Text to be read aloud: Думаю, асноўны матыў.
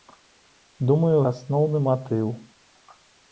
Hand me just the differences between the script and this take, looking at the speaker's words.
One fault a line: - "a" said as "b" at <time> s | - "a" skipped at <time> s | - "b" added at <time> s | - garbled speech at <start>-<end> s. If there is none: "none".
none